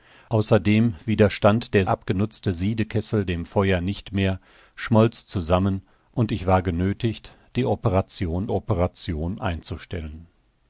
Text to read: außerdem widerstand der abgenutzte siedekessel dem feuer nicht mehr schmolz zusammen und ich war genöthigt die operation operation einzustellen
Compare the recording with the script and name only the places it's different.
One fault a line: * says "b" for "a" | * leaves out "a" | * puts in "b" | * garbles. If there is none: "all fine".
all fine